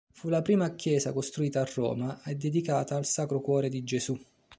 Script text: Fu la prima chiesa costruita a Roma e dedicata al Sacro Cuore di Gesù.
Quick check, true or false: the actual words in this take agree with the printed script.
true